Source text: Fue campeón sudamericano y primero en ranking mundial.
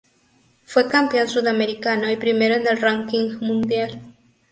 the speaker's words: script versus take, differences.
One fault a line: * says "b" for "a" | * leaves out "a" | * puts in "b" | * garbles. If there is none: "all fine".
* puts in "el"